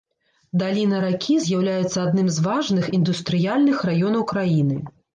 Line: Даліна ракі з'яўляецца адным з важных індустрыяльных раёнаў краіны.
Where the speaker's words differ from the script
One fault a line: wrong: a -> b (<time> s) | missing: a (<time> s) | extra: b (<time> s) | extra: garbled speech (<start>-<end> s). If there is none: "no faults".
no faults